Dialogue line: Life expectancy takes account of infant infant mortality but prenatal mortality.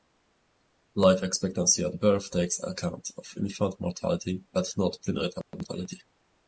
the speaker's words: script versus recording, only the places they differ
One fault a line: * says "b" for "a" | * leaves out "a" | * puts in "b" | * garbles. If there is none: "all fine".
* puts in "at birth"
* leaves out "infant"
* puts in "not"